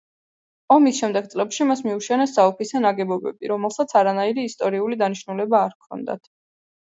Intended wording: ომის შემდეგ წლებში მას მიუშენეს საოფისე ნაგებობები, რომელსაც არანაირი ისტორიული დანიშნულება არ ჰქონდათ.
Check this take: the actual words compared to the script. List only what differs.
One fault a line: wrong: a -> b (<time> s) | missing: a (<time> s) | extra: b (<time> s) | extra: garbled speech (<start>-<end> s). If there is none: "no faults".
no faults